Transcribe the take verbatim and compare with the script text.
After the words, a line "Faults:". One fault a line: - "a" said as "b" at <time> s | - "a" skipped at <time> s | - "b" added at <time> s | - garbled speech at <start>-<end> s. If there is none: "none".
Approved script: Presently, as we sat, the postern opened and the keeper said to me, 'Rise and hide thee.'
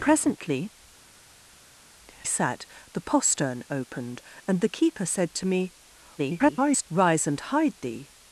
Presently, sat, the postern opened and the keeper said to me, [garbled] 'Rise and hide thee.'
Faults:
- "as we" skipped at 0.7 s
- garbled speech at 6.2-6.9 s